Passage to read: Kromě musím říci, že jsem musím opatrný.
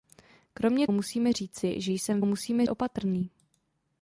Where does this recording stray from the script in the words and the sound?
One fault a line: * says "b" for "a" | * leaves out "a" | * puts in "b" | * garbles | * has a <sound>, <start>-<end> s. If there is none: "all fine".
all fine